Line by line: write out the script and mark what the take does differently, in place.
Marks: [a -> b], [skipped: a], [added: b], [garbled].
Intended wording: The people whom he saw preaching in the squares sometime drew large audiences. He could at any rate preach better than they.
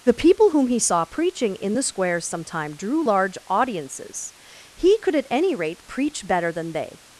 The people whom he saw preaching in the squares sometime drew large audiences. He could at any rate preach better than they.